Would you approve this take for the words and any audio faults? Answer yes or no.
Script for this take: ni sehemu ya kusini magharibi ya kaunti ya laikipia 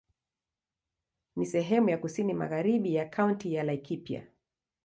yes